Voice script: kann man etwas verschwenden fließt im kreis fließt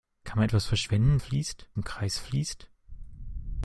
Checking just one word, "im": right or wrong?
right